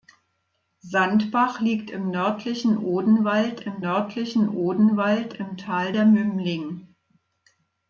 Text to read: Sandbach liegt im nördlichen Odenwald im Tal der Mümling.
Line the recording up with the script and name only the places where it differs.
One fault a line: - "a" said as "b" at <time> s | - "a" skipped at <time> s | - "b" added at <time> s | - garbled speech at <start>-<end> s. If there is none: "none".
- "nördlichen Odenwald im" added at 3.8 s